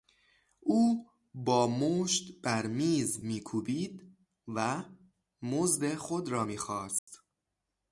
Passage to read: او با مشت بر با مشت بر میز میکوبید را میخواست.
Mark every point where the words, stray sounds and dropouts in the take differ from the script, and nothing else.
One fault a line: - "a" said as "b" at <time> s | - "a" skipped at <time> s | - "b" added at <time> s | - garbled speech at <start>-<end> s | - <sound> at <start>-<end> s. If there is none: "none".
- "با مشت بر میز میکوبید" said as "میز میکوبید و مزد خود" at 2.7 s
- dropout at 7.0-7.1 s